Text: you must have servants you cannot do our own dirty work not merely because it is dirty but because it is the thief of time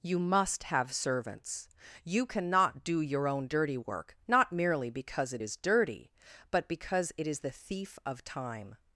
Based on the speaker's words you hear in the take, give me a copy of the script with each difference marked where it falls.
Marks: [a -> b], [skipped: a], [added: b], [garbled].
you must have servants you cannot do [our -> your] own dirty work not merely because it is dirty but because it is the thief of time